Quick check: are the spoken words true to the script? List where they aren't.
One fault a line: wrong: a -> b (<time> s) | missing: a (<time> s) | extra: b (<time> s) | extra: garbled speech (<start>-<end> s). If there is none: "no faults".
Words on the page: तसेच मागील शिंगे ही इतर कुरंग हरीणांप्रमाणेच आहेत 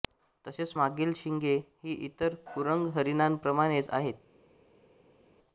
no faults